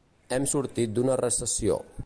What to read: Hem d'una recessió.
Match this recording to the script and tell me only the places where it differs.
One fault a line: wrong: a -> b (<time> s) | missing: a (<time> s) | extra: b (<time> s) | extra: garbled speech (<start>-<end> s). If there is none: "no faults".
extra: sortit (0.5 s)